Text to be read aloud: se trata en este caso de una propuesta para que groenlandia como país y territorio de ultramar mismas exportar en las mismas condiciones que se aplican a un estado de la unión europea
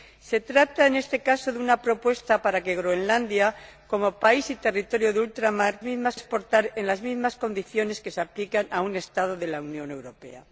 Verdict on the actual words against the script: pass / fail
pass